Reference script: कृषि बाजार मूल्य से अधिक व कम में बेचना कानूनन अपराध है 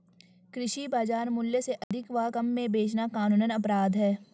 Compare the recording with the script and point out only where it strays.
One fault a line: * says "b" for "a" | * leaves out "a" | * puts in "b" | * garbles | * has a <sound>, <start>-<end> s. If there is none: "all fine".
* has a dropout, 1.8-1.9 s